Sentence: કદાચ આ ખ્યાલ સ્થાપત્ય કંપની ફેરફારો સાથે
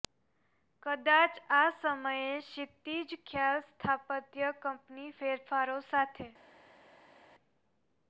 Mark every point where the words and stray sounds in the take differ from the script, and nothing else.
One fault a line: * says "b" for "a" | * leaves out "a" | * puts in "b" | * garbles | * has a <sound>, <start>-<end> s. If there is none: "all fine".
* puts in "સમયે ક્ષિતિજ"